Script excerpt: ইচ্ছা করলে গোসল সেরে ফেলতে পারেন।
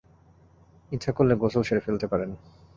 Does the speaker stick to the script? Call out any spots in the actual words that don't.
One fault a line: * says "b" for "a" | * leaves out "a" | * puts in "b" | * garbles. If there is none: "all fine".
all fine